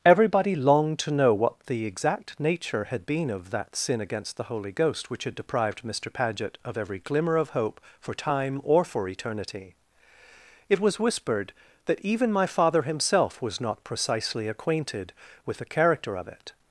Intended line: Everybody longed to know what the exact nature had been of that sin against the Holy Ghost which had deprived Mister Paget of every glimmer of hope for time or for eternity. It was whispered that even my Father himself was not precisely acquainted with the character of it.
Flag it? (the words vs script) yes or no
no